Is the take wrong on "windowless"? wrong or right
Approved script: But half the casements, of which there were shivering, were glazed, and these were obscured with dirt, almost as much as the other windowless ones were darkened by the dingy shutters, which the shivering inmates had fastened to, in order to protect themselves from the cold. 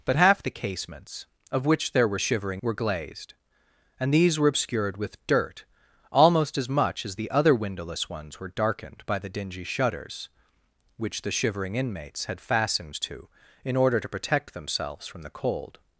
right